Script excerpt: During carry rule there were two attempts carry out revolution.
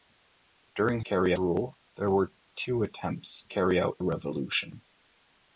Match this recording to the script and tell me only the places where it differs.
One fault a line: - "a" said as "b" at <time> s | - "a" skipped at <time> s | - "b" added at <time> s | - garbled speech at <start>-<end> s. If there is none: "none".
none